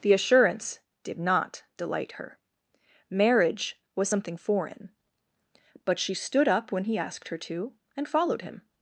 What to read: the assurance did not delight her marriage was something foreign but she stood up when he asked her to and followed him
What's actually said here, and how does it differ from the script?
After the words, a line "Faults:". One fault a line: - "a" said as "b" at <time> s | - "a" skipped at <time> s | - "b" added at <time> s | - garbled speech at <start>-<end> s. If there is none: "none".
the assurance did not delight her marriage was something foreign but she stood up when he asked her to and followed him
Faults:
none